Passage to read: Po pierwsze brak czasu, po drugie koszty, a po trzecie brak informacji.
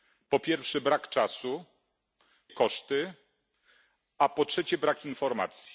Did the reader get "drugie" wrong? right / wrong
wrong